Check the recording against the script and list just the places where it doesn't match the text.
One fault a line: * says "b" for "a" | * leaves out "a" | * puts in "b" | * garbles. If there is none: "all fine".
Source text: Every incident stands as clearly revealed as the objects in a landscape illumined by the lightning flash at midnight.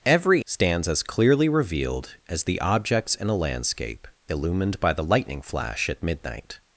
* leaves out "incident"